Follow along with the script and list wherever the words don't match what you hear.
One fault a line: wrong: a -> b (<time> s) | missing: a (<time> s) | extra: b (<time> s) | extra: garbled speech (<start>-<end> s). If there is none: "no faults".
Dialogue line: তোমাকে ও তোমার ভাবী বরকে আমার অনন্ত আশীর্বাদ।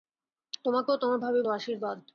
missing: বরকে আমার অনন্ত (1.4 s)